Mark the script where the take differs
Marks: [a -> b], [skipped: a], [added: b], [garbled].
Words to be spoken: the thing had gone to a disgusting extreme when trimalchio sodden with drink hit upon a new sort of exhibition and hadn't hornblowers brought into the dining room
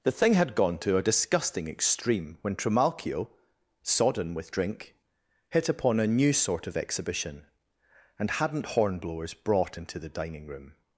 the thing had gone to a disgusting extreme when trimalchio sodden with drink hit upon a new sort of exhibition and hadn't hornblowers brought into the dining room